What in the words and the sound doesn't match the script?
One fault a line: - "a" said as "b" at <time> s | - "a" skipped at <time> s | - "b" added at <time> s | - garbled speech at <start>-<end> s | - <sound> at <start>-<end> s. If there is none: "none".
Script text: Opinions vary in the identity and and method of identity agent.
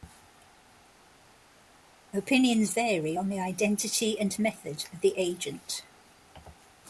- "in" said as "on" at 3.2 s
- "and" skipped at 4.4 s
- "identity" said as "the" at 5.0 s